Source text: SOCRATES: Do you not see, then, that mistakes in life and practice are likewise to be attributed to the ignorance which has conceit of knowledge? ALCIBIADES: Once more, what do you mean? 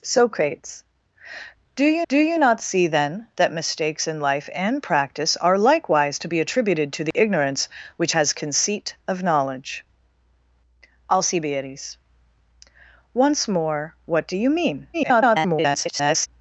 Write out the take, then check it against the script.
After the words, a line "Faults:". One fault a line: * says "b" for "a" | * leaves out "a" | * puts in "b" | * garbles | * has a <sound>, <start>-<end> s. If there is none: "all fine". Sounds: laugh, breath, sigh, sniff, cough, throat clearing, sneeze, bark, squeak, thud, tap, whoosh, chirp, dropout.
SOCRATES: Do you Do you not see, then, that mistakes in life and practice are likewise to be attributed to the ignorance which has conceit of knowledge? ALCIBIADES: Once more, what do you mean? [garbled]
Faults:
* puts in "Do you"
* has a dropout, 7.1-7.1 s
* garbles